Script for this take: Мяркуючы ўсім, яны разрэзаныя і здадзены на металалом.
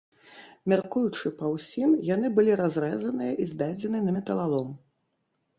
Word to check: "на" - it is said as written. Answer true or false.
true